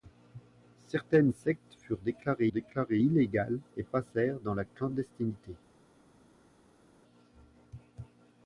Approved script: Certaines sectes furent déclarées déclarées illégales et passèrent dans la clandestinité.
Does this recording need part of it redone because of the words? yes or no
no